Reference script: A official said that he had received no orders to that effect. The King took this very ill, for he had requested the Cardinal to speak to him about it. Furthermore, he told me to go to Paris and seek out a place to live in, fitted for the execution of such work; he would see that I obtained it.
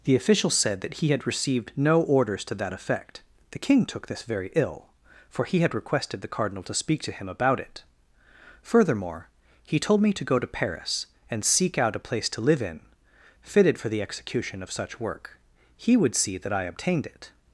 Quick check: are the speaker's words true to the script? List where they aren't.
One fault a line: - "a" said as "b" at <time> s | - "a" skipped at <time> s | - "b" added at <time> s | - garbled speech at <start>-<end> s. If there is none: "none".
- "A" said as "The" at 0.0 s